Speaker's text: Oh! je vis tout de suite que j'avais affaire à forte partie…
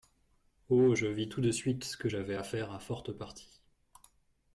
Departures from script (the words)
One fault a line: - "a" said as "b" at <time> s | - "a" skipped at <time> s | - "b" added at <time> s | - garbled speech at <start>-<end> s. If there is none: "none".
none